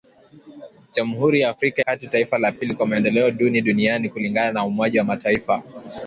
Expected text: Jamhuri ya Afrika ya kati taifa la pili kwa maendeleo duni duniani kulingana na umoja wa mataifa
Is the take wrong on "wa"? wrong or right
right